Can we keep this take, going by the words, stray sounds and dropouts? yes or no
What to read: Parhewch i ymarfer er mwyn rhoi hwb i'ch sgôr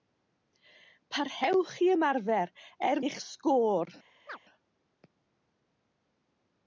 no